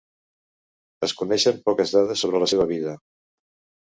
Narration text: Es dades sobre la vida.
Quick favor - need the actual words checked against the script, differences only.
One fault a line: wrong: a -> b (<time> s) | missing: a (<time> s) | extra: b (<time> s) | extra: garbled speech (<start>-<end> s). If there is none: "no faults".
extra: coneixen poques (1.2 s)
extra: seva (2.5 s)